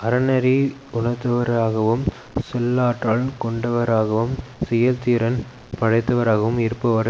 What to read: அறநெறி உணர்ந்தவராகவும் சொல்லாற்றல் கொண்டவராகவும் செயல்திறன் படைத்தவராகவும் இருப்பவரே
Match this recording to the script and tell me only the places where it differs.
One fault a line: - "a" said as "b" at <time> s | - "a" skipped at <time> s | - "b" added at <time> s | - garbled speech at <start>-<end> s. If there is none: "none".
none